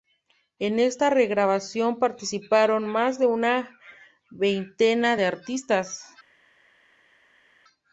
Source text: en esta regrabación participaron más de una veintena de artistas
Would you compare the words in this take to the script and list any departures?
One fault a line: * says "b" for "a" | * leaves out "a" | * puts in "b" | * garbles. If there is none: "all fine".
all fine